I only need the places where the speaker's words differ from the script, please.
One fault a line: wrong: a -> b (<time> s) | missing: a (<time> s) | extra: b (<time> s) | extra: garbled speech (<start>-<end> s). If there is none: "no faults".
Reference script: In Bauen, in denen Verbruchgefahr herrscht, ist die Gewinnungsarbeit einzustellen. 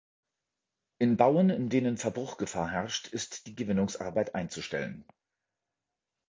no faults